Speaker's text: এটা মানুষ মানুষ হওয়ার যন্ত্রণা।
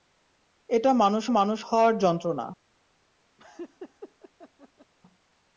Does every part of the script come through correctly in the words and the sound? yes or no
no